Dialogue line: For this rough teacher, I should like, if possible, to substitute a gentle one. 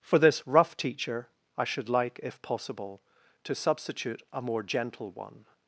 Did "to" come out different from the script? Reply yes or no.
no